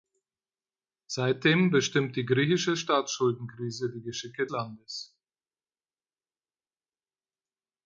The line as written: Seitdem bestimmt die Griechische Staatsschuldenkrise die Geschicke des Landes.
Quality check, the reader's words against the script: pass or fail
fail